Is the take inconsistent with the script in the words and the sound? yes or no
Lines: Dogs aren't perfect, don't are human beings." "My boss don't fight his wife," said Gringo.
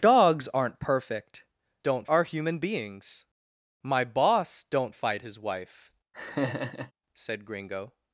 yes